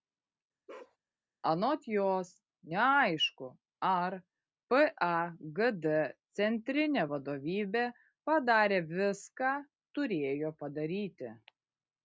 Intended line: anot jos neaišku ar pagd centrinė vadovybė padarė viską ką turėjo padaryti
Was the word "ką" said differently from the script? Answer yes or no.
yes